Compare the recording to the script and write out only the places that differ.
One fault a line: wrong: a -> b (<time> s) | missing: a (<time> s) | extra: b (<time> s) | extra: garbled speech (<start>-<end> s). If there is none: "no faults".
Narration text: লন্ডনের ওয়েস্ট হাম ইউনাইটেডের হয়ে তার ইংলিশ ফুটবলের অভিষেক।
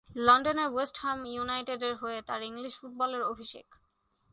no faults